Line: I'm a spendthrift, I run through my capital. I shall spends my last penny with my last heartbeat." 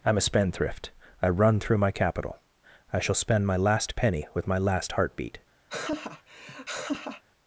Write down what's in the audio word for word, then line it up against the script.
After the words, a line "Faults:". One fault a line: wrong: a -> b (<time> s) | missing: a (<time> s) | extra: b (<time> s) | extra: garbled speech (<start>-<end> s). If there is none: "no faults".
I'm a spendthrift, I run through my capital. I shall spend my last penny with my last heartbeat."
Faults:
wrong: spends -> spend (3.2 s)